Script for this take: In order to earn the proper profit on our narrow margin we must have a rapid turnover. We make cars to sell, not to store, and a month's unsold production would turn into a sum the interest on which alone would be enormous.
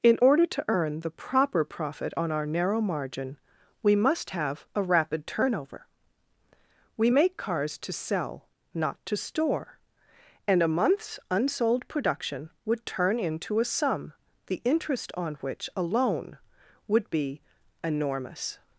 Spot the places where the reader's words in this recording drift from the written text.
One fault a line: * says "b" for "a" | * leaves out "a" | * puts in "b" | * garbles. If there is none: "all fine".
all fine